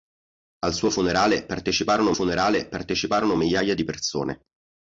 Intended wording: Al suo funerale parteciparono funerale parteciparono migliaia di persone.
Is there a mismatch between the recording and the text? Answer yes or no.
no